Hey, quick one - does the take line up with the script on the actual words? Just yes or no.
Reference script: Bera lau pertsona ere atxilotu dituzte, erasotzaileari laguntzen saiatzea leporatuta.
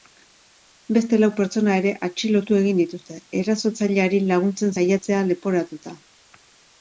no